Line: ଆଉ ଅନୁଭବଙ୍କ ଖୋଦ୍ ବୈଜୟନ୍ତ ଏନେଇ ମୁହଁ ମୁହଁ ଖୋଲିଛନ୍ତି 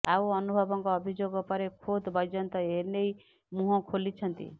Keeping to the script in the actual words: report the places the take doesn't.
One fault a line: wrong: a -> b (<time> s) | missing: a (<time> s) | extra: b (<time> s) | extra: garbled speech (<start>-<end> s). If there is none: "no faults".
extra: ଅଭିଯୋଗ ପରେ (0.9 s)
missing: ମୁହଁ (3.8 s)